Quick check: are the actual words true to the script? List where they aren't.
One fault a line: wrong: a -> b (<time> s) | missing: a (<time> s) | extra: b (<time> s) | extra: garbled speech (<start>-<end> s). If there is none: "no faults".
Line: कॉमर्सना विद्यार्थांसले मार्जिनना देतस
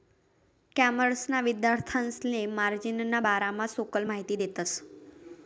extra: बारामा सखोल माहिती (3.3 s)